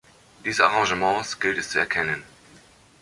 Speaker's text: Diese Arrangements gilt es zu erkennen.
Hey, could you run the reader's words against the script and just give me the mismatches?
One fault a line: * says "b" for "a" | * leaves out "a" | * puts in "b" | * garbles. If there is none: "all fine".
all fine